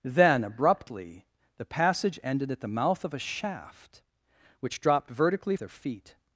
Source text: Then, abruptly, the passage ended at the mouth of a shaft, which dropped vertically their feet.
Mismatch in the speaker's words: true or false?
false